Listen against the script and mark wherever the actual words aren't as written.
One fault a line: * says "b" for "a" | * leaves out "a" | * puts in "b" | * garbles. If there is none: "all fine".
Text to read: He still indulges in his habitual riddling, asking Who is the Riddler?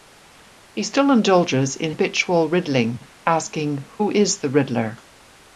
* leaves out "his"